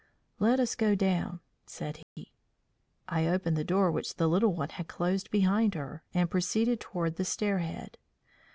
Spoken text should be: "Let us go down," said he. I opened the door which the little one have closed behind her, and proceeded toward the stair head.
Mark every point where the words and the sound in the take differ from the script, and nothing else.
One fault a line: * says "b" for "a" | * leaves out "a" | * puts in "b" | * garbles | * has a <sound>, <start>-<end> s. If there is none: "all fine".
* has a dropout, 2.0-2.2 s
* says "had" for "have"